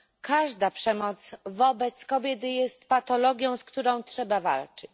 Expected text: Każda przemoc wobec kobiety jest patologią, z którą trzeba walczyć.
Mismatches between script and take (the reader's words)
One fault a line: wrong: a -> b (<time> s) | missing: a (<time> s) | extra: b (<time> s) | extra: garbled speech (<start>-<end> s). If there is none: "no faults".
no faults